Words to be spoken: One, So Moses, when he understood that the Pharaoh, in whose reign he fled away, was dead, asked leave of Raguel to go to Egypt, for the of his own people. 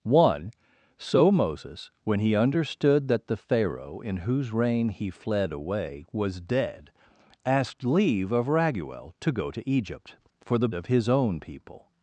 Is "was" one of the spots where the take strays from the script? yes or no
no